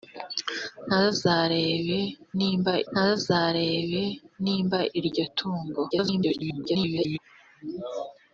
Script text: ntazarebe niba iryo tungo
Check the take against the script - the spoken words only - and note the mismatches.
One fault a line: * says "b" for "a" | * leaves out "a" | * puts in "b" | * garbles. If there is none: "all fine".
* puts in "ntazarebe niba"
* garbles